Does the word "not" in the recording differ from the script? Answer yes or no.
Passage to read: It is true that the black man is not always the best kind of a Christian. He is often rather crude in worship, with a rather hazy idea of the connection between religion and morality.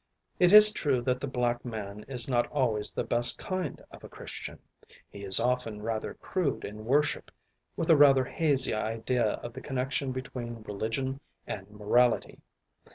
no